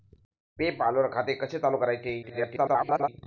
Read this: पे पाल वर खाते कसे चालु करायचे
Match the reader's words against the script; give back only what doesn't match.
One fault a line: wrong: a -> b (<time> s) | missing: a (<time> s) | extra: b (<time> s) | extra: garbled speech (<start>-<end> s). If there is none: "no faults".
extra: garbled speech (2.2-3.1 s)